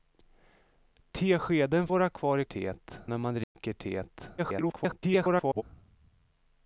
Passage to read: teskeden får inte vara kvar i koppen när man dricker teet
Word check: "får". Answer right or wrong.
wrong